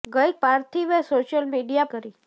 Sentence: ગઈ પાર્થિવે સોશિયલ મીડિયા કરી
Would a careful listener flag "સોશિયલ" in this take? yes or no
no